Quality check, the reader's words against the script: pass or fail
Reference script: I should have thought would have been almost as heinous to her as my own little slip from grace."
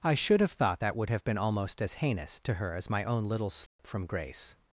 fail